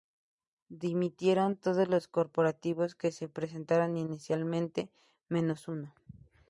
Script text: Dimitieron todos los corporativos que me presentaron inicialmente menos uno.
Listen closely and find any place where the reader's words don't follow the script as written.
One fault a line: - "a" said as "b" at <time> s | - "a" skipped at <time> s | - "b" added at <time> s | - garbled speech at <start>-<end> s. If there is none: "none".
- "me" said as "se" at 3.1 s